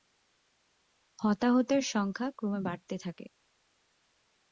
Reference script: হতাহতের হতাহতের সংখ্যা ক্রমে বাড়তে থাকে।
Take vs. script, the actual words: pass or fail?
fail